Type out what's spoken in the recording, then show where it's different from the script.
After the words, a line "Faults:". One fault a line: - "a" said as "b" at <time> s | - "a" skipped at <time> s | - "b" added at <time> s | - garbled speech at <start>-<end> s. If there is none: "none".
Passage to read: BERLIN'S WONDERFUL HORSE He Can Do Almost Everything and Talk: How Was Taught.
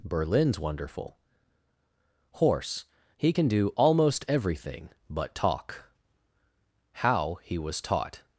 BERLIN'S WONDERFUL HORSE He Can Do Almost Everything but Talk: How He Was Taught.
Faults:
- "and" said as "but" at 5.1 s
- "He" added at 7.4 s